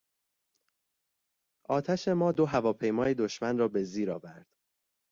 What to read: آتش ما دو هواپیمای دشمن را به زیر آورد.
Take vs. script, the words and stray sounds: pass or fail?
pass